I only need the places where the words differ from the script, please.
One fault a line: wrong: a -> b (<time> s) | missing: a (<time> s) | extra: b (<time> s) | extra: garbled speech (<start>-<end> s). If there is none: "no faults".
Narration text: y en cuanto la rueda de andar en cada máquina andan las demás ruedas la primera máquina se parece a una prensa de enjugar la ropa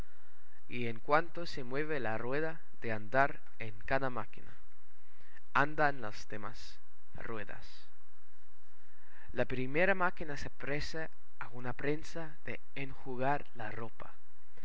extra: se mueve (1.4 s)